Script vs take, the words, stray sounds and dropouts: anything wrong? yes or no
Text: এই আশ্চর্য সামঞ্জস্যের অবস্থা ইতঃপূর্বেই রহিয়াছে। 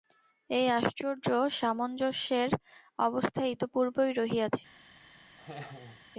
yes